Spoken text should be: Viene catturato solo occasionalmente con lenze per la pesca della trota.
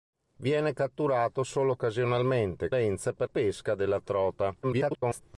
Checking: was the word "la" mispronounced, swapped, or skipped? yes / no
yes